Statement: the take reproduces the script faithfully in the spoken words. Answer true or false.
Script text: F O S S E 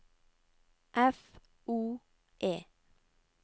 false